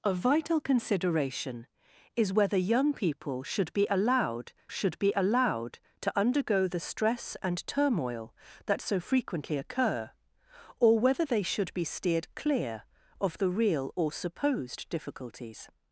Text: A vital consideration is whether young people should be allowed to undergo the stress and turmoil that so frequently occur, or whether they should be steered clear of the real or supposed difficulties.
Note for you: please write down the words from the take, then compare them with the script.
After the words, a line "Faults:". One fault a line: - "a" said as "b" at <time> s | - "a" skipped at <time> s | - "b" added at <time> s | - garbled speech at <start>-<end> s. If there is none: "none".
A vital consideration is whether young people should be allowed should be allowed to undergo the stress and turmoil that so frequently occur, or whether they should be steered clear of the real or supposed difficulties.
Faults:
- "should be allowed" added at 4.7 s